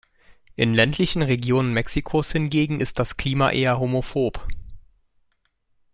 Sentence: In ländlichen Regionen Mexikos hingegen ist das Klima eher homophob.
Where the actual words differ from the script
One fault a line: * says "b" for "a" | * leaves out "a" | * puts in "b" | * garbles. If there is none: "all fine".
all fine